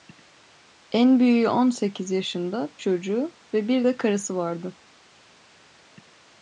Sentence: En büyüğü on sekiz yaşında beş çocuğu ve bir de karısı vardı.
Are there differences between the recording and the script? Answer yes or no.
yes